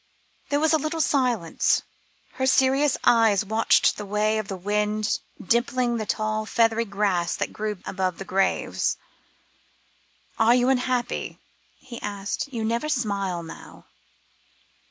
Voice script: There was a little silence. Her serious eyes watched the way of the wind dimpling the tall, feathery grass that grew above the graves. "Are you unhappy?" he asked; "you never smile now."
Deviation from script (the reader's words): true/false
false